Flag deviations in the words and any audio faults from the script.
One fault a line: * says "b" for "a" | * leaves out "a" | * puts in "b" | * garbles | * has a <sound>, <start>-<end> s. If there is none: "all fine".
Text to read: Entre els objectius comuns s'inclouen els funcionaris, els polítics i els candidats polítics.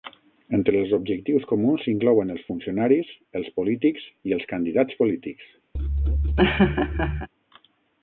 * has a laugh, 5.7-7.3 s